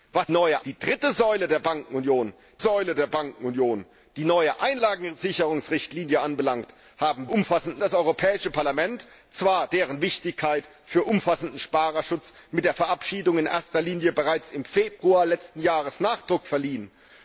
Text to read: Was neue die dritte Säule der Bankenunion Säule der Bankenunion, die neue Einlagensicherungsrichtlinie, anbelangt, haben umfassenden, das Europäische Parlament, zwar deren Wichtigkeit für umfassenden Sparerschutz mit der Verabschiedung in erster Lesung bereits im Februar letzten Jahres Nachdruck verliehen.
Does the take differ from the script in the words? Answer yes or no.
no